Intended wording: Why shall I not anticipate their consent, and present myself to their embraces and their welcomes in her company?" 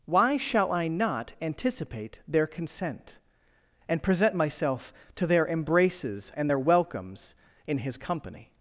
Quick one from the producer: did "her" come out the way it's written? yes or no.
no